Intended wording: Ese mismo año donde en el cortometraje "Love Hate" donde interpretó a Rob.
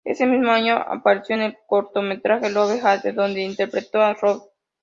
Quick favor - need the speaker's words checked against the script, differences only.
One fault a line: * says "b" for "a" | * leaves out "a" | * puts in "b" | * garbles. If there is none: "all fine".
* says "apareció" for "donde"